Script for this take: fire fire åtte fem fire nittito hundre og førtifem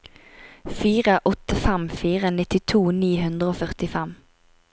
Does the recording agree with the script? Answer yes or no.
no